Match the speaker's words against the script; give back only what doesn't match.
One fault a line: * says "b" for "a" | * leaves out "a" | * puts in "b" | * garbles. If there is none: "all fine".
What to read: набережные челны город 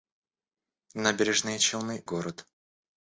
all fine